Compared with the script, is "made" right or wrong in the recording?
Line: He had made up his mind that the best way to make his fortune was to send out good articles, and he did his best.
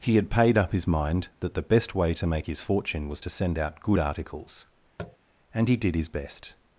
wrong